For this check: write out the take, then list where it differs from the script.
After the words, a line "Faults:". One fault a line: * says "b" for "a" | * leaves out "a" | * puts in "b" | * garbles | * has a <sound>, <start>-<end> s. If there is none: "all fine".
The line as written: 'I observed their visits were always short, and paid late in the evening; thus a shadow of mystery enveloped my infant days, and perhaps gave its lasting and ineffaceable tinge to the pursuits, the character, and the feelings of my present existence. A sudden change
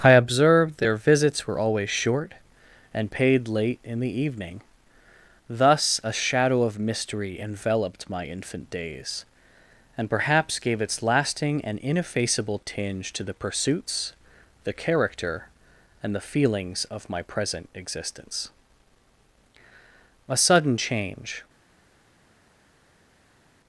'I observed their visits were always short, and paid late in the evening; thus a shadow of mystery enveloped my infant days, and perhaps gave its lasting and ineffaceable tinge to the pursuits, the character, and the feelings of my present existence. A sudden change
Faults:
all fine